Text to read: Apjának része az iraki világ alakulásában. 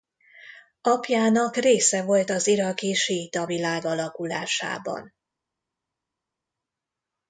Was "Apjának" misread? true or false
false